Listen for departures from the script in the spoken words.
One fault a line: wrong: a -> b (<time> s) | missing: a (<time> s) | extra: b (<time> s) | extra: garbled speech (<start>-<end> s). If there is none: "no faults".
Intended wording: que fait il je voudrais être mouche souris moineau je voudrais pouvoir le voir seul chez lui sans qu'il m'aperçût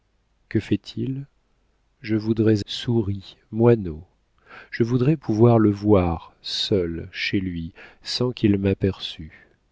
missing: être mouche (2.6 s)